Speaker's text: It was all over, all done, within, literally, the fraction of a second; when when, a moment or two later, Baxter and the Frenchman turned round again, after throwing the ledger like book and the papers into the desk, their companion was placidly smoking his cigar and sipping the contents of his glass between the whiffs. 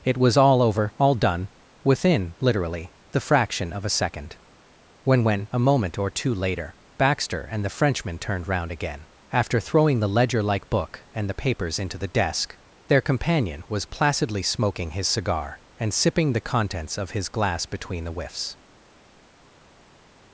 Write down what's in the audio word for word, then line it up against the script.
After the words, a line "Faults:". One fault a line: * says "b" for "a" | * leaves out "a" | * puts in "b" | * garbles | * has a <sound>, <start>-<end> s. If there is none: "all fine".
It was all over, all done, within, literally, the fraction of a second; when when, a moment or two later, Baxter and the Frenchman turned round again, after throwing the ledger like book and the papers into the desk, their companion was placidly smoking his cigar and sipping the contents of his glass between the whiffs.
Faults:
all fine